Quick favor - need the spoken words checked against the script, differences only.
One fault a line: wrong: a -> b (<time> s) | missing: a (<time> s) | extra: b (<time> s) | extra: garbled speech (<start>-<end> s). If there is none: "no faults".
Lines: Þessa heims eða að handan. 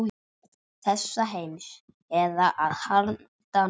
no faults